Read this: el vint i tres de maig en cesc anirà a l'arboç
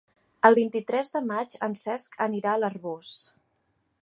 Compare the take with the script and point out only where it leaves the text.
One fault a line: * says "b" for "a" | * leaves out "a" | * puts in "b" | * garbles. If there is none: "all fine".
all fine